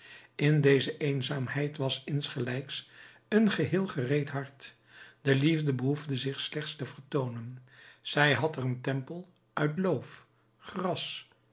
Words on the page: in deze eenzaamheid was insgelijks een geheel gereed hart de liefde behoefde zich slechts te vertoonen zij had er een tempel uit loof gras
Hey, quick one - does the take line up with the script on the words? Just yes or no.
yes